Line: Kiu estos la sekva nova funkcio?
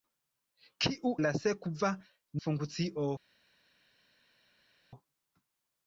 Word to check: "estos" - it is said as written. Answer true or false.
false